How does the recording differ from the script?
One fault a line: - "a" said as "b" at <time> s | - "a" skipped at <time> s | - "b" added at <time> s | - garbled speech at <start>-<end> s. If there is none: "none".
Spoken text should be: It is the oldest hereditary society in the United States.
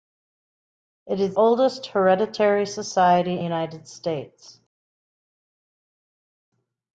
- "the" skipped at 1.4 s
- "in the" skipped at 3.4 s